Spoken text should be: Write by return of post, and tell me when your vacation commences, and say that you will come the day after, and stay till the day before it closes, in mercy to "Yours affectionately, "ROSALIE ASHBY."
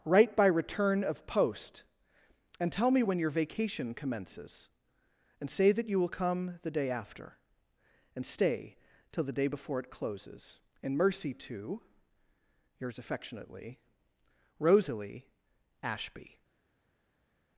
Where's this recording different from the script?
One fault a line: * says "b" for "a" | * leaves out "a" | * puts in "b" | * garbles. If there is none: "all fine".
all fine